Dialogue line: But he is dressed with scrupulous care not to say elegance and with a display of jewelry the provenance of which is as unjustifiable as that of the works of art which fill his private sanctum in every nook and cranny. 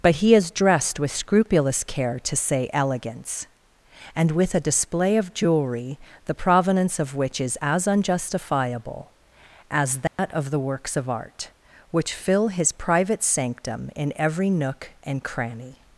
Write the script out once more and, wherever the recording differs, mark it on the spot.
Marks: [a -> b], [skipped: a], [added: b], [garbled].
But he is dressed with scrupulous care [skipped: not] to say elegance and with a display of jewelry the provenance of which is as unjustifiable as that of the works of art which fill his private sanctum in every nook and cranny.